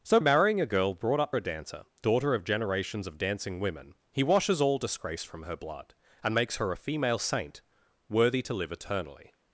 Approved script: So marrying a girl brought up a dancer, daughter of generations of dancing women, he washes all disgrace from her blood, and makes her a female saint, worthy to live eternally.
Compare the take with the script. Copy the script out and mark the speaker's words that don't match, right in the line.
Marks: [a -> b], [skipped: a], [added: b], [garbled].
So marrying a girl brought up a dancer, daughter of generations of dancing women, he washes all disgrace from her blood, and makes her a female saint, worthy to live eternally.